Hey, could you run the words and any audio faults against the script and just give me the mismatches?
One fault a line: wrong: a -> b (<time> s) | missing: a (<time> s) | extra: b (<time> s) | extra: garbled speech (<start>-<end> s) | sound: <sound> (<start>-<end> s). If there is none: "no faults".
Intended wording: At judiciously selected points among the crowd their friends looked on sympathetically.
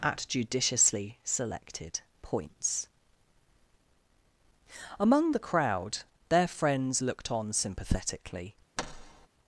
sound: thud (8.8-9.3 s)